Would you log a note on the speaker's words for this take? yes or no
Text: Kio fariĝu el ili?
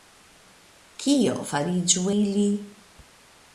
yes